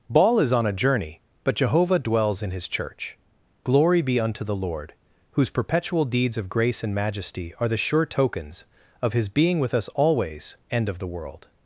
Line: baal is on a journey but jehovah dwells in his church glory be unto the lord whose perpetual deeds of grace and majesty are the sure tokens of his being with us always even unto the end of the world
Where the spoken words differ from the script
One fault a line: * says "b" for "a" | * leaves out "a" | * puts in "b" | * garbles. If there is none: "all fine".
* leaves out "even unto the"